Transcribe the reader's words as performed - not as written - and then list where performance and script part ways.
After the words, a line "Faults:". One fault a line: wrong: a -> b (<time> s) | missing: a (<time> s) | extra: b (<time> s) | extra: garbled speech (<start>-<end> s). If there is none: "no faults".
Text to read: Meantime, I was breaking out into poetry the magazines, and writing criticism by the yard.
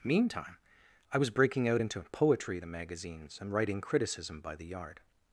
Meantime, I was breaking out into poetry the magazines, and writing criticism by the yard.
Faults:
no faults